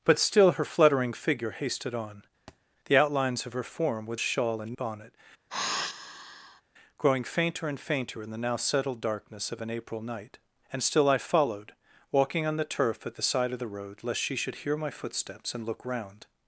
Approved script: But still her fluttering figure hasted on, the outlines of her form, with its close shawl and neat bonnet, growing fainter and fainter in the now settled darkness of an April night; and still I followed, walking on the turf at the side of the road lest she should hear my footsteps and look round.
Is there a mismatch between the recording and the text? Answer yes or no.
yes